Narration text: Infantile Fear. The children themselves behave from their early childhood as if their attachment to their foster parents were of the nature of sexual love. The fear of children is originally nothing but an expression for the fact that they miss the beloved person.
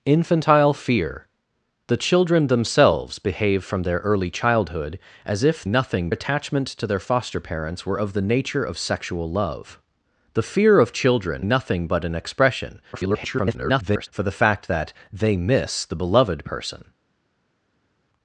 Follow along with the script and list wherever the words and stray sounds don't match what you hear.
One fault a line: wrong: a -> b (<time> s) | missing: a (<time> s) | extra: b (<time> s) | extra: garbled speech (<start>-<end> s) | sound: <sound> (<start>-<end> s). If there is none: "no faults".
wrong: their -> nothing (5.7 s)
missing: is originally (11.4 s)
extra: garbled speech (12.9-14.1 s)